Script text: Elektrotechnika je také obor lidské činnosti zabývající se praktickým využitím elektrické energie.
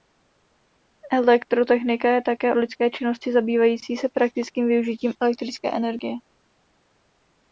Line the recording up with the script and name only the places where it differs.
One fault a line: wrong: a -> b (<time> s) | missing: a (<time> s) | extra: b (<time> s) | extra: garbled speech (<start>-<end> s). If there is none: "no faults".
missing: obor (2.5 s)